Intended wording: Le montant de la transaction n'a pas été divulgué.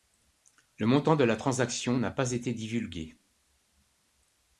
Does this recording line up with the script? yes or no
yes